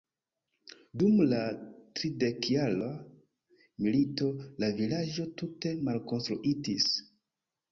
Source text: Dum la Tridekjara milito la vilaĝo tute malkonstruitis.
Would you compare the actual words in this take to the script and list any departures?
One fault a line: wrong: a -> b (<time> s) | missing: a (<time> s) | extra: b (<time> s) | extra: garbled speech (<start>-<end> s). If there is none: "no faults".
no faults